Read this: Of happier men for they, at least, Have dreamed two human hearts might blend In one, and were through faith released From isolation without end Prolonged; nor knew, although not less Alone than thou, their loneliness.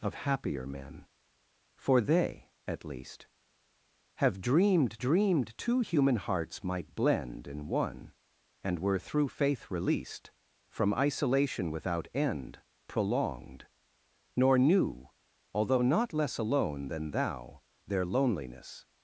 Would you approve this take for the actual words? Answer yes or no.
no